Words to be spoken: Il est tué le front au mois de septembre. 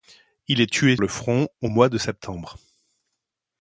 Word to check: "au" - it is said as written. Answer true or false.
true